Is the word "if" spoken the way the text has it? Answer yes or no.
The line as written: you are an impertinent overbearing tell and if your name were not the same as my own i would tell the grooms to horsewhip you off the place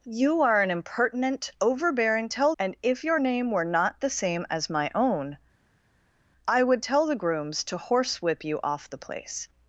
yes